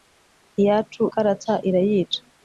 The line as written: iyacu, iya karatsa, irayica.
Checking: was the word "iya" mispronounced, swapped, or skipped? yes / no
yes